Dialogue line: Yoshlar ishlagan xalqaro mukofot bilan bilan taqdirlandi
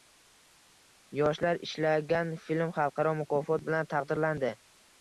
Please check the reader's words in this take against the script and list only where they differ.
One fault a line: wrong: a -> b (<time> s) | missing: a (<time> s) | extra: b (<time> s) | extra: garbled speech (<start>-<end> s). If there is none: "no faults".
extra: film (2.5 s)
missing: bilan (4.0 s)